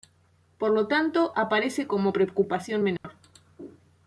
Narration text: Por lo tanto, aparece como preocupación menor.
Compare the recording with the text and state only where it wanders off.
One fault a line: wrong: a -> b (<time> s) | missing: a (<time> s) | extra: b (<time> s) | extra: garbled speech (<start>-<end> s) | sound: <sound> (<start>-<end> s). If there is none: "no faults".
sound: dropout (3.0-3.0 s)